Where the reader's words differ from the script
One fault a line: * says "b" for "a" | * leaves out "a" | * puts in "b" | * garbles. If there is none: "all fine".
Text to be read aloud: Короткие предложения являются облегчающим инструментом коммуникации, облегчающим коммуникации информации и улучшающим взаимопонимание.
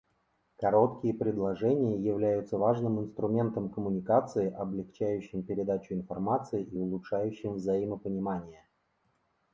* says "важным" for "облегчающим"
* says "передачу" for "коммуникации"